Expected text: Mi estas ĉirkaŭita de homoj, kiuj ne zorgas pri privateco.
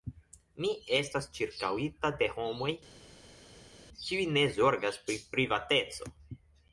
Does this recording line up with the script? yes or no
yes